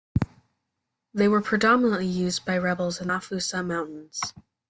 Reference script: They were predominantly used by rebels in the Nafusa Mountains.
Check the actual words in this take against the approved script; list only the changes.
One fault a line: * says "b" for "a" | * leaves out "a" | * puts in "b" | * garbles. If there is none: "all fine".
* leaves out "the"